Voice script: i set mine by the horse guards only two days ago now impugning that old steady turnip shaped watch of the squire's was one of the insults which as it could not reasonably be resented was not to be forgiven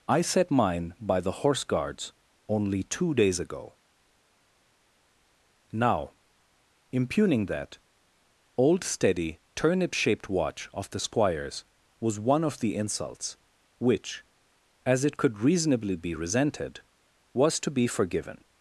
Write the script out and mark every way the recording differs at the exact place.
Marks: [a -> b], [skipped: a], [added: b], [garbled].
i set mine by the horse guards only two days ago now impugning that old steady turnip shaped watch of the squire's was one of the insults which as it could [skipped: not] reasonably be resented was [skipped: not] to be forgiven